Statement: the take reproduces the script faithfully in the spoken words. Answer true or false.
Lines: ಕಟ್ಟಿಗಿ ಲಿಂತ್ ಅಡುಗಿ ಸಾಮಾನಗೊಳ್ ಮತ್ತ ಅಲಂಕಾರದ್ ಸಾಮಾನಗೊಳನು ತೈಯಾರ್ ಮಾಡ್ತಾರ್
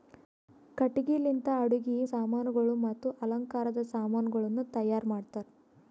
true